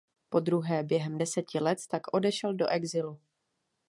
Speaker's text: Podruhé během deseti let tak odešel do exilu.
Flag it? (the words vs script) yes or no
no